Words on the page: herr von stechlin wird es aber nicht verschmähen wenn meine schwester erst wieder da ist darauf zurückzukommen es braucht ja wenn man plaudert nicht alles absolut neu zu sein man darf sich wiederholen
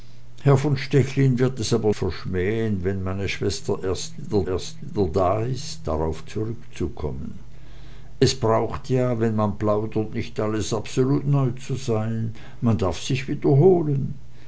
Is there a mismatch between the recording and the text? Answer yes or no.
yes